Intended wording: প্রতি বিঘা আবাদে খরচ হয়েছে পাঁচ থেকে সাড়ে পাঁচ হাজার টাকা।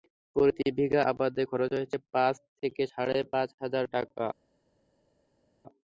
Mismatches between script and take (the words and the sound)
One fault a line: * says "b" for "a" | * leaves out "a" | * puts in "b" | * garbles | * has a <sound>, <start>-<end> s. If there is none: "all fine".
all fine